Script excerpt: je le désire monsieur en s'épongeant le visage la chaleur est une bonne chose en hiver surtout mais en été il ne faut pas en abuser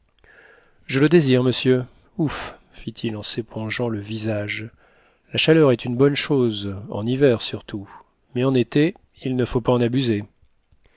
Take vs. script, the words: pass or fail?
fail